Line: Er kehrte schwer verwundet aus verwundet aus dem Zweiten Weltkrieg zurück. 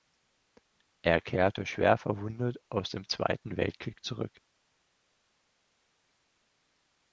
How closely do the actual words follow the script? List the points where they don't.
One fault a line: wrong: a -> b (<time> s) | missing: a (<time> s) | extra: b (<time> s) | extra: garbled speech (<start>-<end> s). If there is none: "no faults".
missing: verwundet aus (2.9 s)